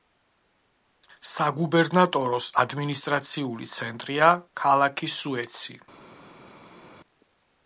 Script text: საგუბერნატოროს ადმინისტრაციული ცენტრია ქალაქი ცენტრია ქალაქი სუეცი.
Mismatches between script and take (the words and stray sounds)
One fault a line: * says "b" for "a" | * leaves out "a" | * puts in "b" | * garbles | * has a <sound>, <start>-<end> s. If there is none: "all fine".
* leaves out "ცენტრია ქალაქი"